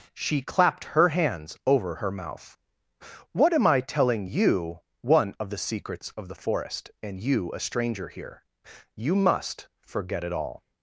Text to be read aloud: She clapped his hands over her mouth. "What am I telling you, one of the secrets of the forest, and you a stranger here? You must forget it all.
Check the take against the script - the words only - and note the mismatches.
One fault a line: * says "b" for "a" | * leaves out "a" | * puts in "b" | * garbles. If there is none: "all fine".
* says "her" for "his"